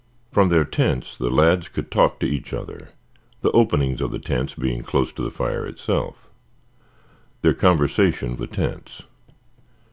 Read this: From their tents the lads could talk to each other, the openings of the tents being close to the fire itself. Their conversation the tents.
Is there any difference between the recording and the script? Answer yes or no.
no